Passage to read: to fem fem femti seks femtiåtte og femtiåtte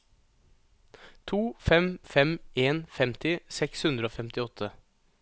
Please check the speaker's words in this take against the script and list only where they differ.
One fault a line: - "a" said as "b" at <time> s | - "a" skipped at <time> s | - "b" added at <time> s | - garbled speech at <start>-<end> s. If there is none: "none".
- "en" added at 2.7 s
- "femtiåtte" said as "hundre" at 3.9 s